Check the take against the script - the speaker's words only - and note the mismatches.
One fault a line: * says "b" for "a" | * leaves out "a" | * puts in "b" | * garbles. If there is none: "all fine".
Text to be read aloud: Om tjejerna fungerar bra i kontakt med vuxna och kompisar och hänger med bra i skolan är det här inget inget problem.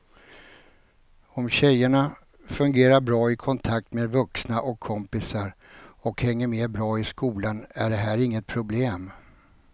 * leaves out "inget"